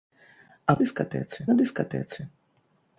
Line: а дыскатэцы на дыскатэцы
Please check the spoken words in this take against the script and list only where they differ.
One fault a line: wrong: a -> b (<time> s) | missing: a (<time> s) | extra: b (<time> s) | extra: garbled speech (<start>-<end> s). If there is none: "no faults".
no faults